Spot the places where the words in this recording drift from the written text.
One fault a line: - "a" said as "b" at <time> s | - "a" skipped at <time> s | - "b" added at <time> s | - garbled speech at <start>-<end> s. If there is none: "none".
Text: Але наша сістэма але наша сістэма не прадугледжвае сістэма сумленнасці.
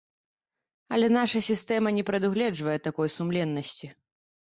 - "але наша сістэма" skipped at 1.9 s
- "сістэма" said as "такой" at 2.9 s